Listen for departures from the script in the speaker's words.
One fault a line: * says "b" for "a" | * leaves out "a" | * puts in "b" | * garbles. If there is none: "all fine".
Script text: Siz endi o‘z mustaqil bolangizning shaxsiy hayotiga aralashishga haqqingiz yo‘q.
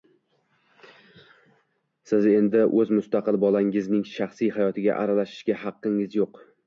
all fine